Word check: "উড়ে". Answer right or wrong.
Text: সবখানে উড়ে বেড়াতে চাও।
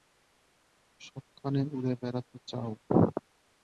right